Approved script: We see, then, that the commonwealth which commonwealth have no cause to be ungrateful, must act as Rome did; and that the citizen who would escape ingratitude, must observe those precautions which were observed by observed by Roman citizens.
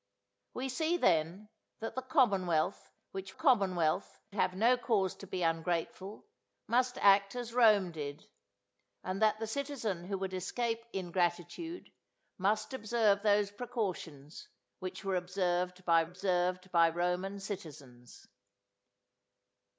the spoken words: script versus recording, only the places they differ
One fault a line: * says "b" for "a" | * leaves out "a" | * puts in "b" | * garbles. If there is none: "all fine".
all fine